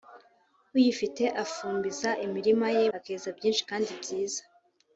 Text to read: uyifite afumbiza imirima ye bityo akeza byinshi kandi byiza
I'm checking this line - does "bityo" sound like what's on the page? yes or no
no